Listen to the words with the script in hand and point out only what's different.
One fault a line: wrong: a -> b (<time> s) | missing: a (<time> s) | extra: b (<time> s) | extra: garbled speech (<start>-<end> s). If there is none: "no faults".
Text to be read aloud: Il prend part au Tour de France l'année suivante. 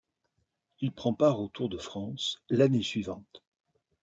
no faults